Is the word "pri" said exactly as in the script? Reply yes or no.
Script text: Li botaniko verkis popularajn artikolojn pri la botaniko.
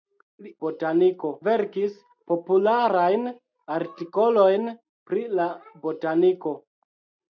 yes